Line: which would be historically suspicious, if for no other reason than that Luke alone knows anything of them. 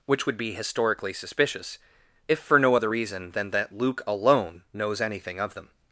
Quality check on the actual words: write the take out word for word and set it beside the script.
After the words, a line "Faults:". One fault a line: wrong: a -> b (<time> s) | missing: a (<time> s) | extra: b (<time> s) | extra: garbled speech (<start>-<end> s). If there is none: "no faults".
which would be historically suspicious, if for no other reason than that Luke alone knows anything of them.
Faults:
no faults